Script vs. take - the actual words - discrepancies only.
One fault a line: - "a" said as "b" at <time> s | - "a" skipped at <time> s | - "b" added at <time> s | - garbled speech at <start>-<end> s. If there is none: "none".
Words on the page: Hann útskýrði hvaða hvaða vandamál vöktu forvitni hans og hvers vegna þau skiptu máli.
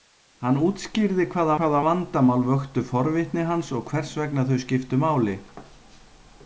none